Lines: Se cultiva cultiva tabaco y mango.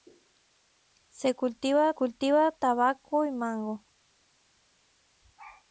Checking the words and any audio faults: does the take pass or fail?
pass